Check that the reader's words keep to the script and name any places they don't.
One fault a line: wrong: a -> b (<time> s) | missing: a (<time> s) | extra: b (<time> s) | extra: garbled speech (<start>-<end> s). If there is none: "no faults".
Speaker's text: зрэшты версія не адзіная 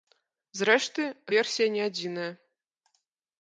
no faults